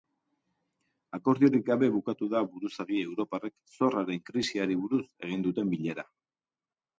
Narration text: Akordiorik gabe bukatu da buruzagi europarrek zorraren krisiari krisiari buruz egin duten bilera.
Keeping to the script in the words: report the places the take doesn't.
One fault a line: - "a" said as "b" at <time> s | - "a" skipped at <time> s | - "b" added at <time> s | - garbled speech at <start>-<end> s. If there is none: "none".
- "krisiari" skipped at 4.8 s